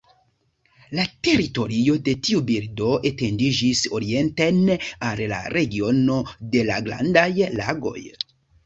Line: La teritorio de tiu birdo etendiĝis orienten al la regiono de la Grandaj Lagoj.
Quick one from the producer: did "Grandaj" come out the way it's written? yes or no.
yes